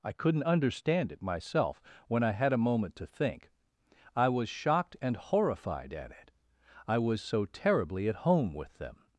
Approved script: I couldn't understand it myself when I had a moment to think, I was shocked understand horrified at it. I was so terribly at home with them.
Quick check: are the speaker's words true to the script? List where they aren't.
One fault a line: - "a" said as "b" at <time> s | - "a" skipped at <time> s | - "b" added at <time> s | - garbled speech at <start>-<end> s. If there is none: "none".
- "understand" said as "and" at 5.0 s